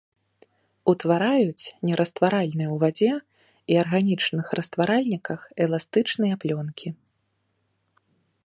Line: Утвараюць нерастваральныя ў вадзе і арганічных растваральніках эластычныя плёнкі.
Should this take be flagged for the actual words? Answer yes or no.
no